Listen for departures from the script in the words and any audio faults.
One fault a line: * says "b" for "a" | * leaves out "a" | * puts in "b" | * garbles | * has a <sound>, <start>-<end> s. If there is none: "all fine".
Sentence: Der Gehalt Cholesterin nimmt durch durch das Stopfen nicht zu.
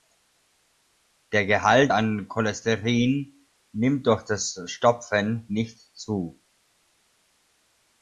* puts in "an"
* leaves out "durch"